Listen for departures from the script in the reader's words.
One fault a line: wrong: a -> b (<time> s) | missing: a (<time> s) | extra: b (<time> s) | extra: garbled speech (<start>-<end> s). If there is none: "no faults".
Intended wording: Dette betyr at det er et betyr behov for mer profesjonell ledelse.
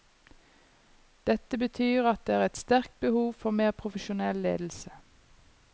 wrong: betyr -> sterkt (2.6 s)